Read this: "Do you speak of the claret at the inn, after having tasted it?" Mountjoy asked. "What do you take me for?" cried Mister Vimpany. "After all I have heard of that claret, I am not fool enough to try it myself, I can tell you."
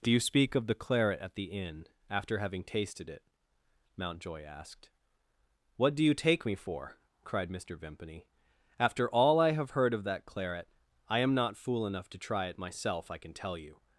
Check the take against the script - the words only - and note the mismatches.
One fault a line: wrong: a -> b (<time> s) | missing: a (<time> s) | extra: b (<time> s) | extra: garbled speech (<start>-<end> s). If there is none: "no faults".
no faults